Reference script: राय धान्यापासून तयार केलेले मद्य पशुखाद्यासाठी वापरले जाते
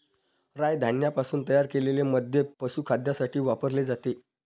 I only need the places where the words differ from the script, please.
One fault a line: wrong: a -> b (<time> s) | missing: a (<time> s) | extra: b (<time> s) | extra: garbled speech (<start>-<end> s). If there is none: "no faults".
no faults